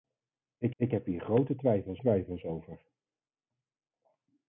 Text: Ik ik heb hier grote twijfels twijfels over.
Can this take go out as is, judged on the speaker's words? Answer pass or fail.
pass